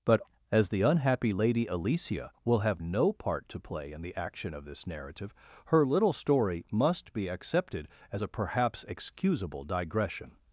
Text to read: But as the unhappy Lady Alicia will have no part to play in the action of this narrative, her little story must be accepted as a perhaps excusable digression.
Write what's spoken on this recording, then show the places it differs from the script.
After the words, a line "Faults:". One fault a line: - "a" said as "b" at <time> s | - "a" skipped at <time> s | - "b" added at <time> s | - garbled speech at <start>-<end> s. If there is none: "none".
But as the unhappy Lady Alicia will have no part to play in the action of this narrative, her little story must be accepted as a perhaps excusable digression.
Faults:
none